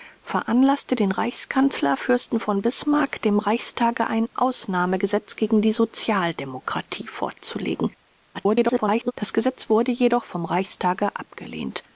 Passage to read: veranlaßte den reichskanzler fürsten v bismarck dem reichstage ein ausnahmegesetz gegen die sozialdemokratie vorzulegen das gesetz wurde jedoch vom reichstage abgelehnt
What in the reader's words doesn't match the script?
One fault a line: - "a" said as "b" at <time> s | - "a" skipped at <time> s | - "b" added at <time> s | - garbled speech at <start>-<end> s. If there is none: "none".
- garbled speech at 8.3-9.1 s